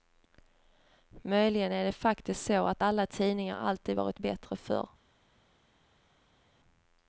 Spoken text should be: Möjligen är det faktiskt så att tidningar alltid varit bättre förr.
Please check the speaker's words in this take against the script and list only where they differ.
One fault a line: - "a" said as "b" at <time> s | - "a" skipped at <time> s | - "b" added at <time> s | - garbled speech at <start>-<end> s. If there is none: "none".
- "alla" added at 2.8 s